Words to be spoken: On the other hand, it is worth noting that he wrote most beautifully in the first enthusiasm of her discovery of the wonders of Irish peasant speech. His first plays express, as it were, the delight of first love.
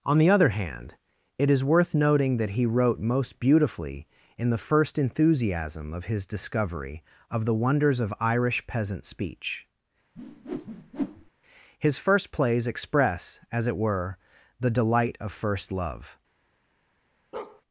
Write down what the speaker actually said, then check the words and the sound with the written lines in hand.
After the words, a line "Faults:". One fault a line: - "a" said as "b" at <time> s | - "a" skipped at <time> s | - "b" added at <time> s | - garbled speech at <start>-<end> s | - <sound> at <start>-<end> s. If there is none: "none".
On the other hand, it is worth noting that he wrote most beautifully in the first enthusiasm of his discovery of the wonders of Irish peasant speech. His first plays express, as it were, the delight of first love.
Faults:
- "her" said as "his" at 6.0 s
- whoosh at 10.2-11.3 s
- bark at 17.3-17.6 s